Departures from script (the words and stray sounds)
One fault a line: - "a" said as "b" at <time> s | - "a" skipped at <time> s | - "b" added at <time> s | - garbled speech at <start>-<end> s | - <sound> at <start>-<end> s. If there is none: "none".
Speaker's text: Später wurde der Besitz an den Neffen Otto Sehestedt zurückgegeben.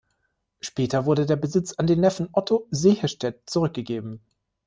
none